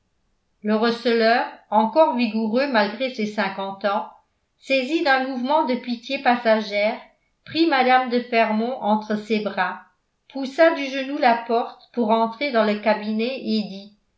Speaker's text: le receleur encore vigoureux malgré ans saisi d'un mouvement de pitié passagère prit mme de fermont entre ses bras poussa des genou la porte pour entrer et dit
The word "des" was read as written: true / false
false